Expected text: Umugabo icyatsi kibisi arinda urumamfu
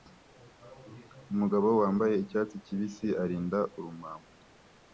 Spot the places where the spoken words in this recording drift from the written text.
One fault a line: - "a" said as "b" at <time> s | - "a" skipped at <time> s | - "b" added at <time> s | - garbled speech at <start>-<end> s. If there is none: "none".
- "wambaye" added at 1.8 s